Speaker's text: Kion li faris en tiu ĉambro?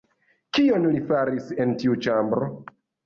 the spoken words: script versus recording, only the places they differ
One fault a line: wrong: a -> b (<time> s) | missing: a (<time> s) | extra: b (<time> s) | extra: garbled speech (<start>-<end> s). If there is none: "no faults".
no faults